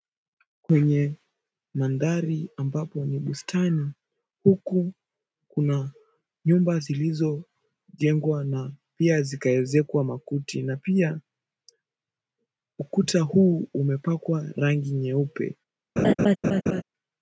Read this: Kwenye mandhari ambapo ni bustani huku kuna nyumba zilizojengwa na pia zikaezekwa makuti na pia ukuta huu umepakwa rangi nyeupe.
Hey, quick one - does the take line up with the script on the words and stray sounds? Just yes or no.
no